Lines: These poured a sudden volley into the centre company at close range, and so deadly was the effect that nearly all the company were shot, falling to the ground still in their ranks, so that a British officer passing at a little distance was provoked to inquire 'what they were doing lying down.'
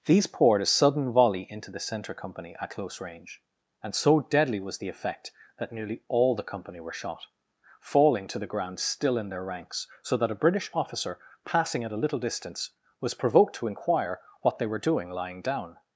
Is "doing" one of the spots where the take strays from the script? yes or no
no